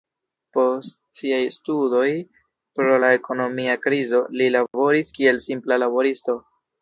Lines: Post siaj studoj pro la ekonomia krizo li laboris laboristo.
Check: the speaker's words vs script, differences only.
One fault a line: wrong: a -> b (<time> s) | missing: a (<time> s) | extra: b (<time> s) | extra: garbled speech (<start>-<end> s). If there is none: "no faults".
extra: kiel simpla (5.2 s)